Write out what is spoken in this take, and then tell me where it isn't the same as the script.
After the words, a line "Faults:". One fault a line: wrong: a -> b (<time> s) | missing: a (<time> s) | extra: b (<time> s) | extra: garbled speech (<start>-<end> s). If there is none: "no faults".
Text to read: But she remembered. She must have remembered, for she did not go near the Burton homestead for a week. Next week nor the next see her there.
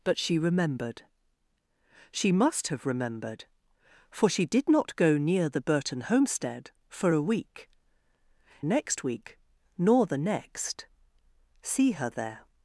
But she remembered. She must have remembered, for she did not go near the Burton homestead for a week. Next week nor the next see her there.
Faults:
no faults